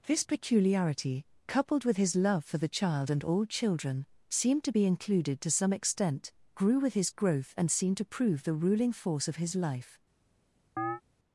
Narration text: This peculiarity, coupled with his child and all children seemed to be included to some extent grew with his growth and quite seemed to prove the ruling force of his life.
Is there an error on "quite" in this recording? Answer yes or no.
yes